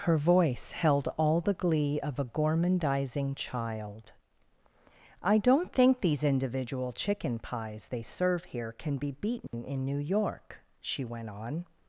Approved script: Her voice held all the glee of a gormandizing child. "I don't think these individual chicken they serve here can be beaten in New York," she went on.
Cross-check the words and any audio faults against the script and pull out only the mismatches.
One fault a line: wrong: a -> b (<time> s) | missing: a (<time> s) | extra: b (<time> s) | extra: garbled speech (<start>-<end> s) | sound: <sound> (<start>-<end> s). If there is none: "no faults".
extra: pies (7.4 s)
sound: dropout (9.5-9.5 s)